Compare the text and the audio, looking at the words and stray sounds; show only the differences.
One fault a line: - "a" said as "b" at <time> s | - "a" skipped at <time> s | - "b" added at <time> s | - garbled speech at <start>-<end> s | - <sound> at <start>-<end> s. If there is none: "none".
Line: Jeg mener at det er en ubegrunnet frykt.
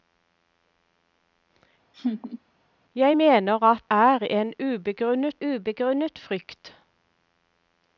- laugh at 1.9-2.4 s
- "det" skipped at 3.8 s
- "ubegrunnet" added at 5.4 s